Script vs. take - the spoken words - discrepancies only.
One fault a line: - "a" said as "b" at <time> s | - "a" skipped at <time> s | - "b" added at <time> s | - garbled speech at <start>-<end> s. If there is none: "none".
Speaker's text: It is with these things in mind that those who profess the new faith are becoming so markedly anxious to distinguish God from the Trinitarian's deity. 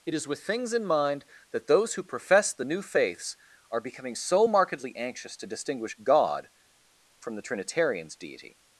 - "these" skipped at 0.4 s
- "faith" said as "faiths" at 2.8 s